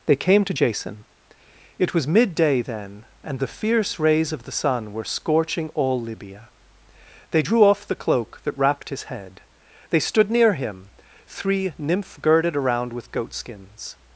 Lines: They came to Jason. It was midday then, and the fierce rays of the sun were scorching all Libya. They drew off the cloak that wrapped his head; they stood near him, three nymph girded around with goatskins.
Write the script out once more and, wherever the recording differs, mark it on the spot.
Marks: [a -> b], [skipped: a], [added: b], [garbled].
They came to Jason. It was midday then, and the fierce rays of the sun were scorching all Libya. They drew off the cloak that wrapped his head; they stood near him, three nymph girded around with goatskins.